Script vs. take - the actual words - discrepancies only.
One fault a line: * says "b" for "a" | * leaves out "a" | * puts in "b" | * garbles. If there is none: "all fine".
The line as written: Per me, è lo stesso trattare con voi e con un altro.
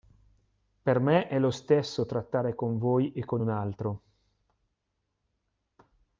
all fine